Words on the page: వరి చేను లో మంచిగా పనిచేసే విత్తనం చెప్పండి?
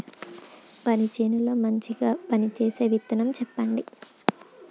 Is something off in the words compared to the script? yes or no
no